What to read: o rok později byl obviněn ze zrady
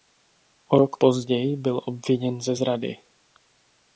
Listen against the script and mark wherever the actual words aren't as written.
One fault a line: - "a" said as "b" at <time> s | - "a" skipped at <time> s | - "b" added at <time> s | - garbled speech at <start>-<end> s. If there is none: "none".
none